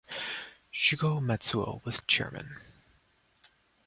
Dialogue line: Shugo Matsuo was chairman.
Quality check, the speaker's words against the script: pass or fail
pass